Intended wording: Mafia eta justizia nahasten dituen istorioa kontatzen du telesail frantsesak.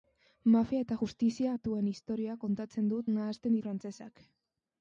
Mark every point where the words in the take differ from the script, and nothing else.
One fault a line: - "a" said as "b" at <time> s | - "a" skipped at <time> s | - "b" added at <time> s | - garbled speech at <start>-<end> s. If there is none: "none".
- "nahasten" skipped at 1.5 s
- "telesail" said as "nahasten" at 3.1 s